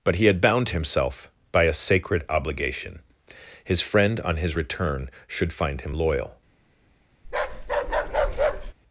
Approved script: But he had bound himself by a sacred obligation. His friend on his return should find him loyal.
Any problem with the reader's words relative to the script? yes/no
no